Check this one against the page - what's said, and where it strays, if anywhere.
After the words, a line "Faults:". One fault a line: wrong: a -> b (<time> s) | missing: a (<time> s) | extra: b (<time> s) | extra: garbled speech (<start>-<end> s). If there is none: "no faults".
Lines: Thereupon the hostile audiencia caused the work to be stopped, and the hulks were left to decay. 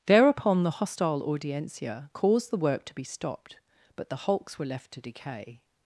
Thereupon the hostile audiencia caused the work to be stopped, but the hulks were left to decay.
Faults:
wrong: and -> but (4.0 s)